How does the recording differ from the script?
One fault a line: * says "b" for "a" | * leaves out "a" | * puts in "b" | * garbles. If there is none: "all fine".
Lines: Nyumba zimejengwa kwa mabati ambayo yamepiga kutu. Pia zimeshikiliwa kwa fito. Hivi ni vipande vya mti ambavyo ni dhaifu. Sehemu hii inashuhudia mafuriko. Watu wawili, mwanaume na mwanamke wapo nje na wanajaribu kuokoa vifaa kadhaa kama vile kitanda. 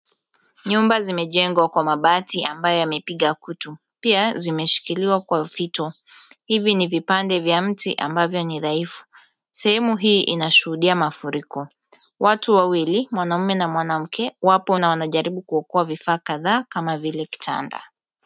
* leaves out "nje"